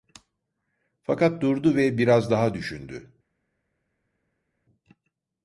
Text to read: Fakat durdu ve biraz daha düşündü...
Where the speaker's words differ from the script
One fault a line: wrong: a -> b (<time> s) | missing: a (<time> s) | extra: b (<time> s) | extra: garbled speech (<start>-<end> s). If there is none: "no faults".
no faults